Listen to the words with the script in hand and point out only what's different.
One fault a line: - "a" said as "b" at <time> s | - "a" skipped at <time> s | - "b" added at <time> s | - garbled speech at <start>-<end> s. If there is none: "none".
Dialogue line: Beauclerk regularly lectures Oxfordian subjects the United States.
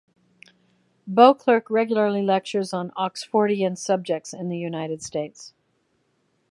- "on" added at 2.7 s
- "in" added at 4.3 s